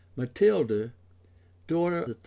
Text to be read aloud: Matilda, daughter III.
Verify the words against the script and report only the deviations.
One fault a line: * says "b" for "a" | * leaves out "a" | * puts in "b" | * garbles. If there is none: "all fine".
all fine